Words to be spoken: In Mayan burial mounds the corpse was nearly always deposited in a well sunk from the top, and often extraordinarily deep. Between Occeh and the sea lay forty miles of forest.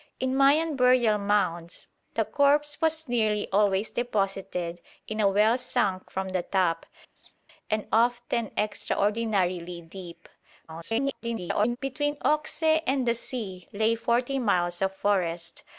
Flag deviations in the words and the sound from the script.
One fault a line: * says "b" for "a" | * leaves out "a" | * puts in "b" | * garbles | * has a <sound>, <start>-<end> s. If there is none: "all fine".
* has a laugh, 7.2-7.3 s
* garbles